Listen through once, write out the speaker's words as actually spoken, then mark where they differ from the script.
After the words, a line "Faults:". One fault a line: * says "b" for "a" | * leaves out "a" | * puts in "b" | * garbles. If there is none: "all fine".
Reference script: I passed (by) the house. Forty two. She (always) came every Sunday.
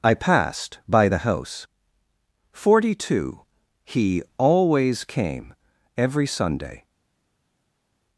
I passed (by) the house. Forty two. He (always) came every Sunday.
Faults:
* says "He" for "She"